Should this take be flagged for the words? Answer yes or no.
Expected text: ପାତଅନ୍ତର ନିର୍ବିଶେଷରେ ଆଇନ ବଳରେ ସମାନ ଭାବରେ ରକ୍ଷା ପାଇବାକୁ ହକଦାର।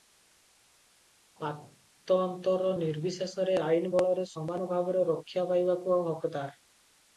no